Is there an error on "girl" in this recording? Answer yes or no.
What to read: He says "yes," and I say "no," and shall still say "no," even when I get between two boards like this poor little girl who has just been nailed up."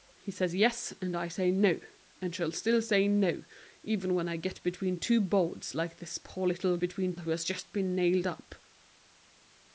yes